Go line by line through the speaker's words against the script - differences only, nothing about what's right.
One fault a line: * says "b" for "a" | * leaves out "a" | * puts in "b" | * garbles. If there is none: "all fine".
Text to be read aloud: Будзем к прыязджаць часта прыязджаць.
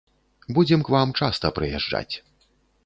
* says "вам" for "прыязджаць"